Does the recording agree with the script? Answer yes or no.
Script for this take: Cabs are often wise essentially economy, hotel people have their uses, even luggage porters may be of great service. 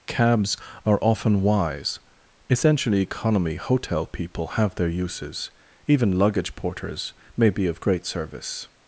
yes